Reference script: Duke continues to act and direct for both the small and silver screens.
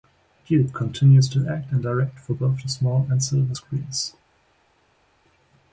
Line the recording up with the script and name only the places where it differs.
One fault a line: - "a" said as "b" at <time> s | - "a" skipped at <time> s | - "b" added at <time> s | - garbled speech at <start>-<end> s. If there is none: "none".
none